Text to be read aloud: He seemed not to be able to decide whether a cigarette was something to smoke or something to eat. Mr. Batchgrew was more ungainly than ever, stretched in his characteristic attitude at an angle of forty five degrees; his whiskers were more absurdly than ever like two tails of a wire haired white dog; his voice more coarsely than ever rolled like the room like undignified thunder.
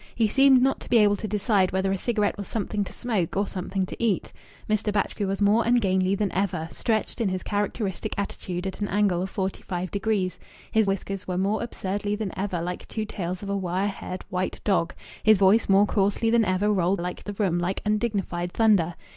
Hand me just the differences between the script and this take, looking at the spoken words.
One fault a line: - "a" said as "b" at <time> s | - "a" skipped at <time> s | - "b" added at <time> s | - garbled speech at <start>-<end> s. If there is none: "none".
none